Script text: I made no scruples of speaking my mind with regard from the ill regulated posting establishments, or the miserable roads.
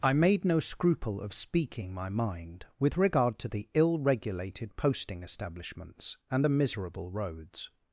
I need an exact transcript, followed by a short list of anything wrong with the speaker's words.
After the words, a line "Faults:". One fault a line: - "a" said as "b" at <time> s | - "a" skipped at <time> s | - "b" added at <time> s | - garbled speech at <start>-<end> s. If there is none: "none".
I made no scruple of speaking my mind with regard to the ill regulated posting establishments, and the miserable roads.
Faults:
- "scruples" said as "scruple" at 0.6 s
- "from" said as "to" at 3.4 s
- "or" said as "and" at 6.3 s